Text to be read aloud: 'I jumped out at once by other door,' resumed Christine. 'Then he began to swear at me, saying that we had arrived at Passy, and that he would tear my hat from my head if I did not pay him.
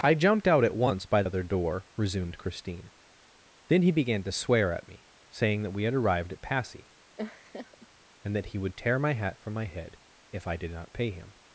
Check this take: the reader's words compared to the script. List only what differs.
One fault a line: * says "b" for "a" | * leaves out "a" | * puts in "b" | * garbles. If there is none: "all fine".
all fine